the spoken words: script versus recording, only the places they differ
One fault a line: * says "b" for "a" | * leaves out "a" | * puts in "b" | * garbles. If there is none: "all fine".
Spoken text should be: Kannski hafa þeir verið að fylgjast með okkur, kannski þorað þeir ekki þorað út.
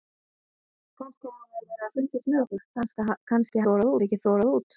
all fine